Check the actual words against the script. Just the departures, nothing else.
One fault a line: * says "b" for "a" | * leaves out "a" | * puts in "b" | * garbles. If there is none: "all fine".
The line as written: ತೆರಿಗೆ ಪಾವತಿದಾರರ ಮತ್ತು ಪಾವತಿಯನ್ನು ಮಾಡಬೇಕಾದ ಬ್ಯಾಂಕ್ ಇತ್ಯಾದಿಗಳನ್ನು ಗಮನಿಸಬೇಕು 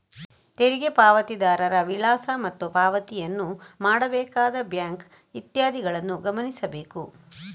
* puts in "ವಿಳಾಸ"